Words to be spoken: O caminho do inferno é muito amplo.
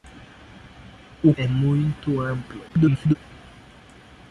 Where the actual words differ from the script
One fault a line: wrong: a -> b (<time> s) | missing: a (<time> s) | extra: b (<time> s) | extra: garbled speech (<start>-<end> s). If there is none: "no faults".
missing: caminho do inferno (1.3 s)
extra: garbled speech (2.7-3.2 s)